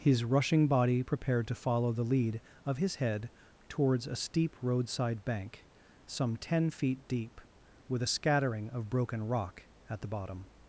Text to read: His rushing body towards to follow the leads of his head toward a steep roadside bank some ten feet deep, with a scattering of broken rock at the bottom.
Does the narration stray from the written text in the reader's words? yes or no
yes